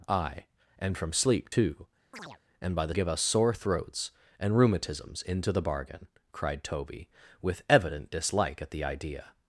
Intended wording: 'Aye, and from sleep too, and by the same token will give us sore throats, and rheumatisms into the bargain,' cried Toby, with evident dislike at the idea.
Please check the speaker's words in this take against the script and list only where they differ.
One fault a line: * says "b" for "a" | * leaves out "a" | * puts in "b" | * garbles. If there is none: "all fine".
* leaves out "same token will"